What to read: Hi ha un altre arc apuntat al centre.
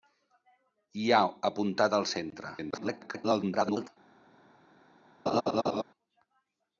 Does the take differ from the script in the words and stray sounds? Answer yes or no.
yes